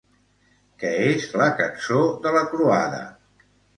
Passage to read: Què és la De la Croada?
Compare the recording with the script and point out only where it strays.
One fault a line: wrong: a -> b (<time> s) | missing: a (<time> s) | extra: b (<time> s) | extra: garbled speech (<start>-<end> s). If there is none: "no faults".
extra: Cançó (1.6 s)